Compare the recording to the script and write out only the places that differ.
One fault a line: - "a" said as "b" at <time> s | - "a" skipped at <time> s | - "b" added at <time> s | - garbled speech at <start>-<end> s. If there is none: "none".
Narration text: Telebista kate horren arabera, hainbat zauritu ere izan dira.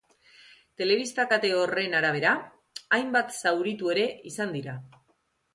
none